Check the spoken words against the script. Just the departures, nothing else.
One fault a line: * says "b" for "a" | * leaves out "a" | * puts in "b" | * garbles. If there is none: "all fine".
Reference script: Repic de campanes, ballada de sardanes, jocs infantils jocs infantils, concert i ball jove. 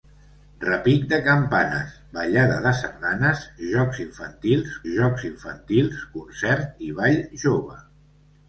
all fine